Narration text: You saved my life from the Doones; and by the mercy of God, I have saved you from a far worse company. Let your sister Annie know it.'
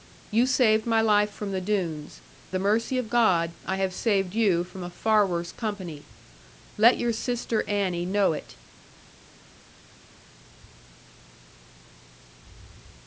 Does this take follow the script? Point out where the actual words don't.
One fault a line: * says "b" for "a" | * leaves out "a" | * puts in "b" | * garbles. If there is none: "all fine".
* leaves out "and by"